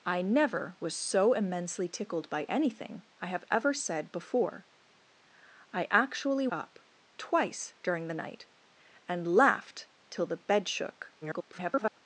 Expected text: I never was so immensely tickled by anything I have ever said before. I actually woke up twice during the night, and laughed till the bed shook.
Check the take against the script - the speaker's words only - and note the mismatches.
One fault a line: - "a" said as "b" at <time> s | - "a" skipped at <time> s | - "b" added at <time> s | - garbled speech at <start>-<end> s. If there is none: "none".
- "woke" skipped at 6.5 s
- garbled speech at 11.2-12.0 s